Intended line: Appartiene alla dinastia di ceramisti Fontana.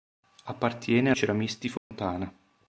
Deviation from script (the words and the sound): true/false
true